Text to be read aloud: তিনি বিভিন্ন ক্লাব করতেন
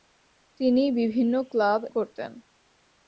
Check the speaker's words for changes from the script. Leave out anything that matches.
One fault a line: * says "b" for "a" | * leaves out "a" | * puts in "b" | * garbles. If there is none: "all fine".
all fine